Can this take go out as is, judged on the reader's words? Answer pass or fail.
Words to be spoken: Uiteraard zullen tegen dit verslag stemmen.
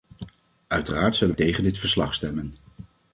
pass